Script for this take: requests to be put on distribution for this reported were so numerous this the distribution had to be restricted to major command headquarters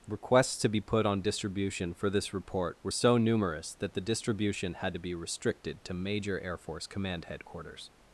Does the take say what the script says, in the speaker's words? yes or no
no